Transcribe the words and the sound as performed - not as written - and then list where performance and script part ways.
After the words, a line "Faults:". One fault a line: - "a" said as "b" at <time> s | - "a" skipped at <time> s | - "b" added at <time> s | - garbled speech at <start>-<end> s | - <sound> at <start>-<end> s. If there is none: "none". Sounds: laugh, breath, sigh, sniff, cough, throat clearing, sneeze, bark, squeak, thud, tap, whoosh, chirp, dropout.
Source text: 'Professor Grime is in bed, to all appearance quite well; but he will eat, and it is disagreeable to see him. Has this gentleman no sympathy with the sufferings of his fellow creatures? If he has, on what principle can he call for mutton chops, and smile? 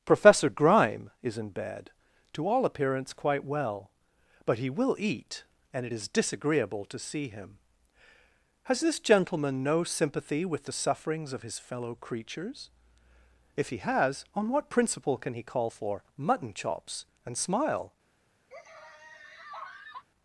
'Professor Grime is in bed, to all appearance quite well; but he will eat, and it is disagreeable to see him. Has this gentleman no sympathy with the sufferings of his fellow creatures? If he has, on what principle can he call for mutton chops, and smile?
Faults:
- laugh at 18.5-20.1 s